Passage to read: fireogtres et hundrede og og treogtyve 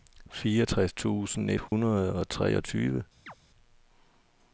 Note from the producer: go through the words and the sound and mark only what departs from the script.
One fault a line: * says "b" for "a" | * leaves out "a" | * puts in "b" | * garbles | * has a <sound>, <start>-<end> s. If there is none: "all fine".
* puts in "tusind"
* has a dropout, 1.7-1.7 s
* leaves out "og"
* has a chirp, 3.3-3.3 s